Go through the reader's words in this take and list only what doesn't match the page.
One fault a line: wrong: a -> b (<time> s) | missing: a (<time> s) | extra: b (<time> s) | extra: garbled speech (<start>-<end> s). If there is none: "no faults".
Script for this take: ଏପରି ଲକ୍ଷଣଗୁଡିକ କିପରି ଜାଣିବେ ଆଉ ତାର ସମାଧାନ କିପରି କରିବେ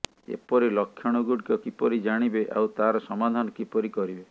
no faults